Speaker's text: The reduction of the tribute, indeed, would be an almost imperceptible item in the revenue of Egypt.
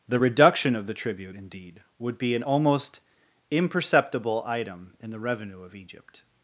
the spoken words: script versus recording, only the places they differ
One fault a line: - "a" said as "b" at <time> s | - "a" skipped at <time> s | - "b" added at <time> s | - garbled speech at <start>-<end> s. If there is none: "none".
none